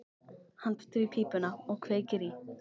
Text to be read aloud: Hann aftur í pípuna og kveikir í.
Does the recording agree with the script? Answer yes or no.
yes